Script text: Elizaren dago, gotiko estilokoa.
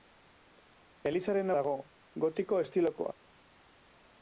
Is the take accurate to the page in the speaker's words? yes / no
yes